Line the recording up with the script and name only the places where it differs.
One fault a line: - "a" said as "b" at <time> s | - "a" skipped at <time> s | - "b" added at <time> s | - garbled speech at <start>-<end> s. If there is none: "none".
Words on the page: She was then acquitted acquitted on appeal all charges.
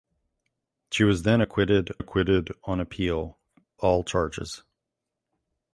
none